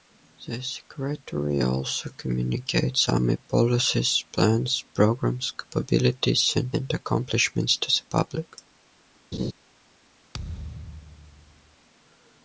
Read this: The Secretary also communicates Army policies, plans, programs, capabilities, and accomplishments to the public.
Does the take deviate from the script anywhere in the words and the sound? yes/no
yes